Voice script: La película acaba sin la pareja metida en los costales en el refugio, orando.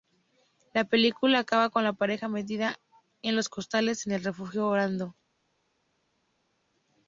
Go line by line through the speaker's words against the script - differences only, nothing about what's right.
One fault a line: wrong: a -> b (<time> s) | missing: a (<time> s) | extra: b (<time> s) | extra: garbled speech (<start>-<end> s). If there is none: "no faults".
wrong: sin -> con (1.7 s)